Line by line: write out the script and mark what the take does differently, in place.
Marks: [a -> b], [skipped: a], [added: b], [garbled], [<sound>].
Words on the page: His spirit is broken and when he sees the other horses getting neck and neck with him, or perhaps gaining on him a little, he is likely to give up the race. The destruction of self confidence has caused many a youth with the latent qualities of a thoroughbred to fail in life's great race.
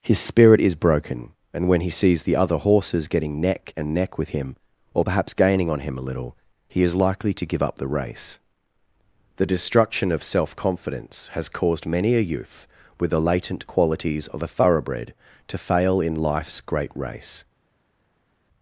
His spirit is broken and when he sees the other horses getting neck and neck with him, or perhaps gaining on him a little, he is likely to give up the race. The destruction of self confidence has caused many a youth with the latent qualities of a thoroughbred to fail in life's great race.